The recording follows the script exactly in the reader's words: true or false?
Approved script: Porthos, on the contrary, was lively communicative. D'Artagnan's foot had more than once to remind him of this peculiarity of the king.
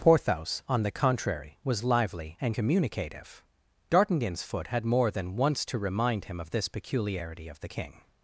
false